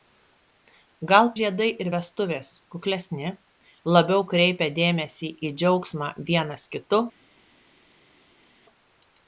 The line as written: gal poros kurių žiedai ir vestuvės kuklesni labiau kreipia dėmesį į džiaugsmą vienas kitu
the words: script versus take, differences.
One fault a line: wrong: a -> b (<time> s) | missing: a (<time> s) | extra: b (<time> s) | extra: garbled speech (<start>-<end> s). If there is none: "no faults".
missing: poros kurių (1.3 s)